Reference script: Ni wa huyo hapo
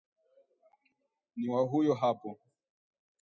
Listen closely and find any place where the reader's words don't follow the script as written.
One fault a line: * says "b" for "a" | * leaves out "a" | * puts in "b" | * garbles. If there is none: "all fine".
all fine